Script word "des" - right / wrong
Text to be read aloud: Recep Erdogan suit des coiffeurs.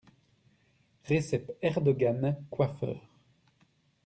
wrong